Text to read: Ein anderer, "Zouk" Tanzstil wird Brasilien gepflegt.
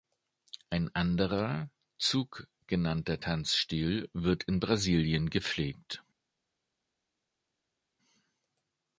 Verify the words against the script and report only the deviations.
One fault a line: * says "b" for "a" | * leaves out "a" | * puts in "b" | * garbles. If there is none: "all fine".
* puts in "genannter"
* puts in "in"